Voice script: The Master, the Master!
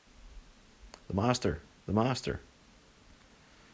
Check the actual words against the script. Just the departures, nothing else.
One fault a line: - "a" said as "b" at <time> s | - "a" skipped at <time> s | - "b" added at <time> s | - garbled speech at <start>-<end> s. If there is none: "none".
none